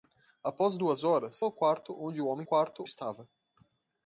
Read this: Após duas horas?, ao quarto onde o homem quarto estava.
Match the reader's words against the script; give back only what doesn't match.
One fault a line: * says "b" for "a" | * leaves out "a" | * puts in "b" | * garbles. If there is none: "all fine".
all fine